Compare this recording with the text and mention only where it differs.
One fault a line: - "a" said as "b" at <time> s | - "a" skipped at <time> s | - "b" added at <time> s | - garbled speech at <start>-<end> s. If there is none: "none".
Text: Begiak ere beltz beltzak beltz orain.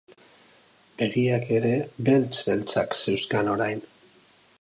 - "beltz" said as "zeuzkan" at 3.0 s